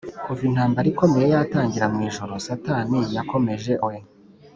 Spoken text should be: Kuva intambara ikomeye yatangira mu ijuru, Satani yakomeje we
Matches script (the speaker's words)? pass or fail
pass